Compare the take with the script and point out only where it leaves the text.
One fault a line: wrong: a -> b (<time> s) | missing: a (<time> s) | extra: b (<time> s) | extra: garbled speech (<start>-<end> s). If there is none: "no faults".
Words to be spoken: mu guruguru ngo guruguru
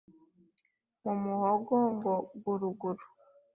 wrong: guruguru -> muhogo (1.2 s)